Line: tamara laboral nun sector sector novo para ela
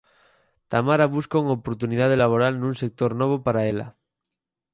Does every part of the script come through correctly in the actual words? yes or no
no